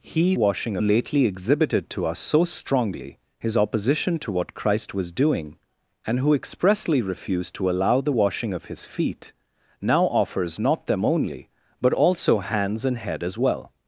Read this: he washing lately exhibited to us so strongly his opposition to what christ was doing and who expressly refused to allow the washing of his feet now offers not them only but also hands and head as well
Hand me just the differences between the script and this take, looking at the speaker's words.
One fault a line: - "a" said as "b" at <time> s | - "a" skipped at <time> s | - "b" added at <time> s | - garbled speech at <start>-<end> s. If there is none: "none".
none